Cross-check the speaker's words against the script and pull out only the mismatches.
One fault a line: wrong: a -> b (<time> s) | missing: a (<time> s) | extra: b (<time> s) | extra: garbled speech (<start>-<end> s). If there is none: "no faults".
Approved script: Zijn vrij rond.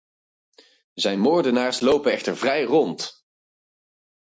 extra: moordenaars lopen echter (1.2 s)